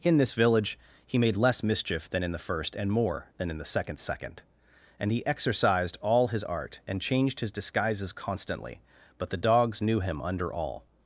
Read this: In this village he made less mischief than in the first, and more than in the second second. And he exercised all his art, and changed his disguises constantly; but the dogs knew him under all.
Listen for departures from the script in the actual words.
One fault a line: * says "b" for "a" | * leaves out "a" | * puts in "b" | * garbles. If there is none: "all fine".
all fine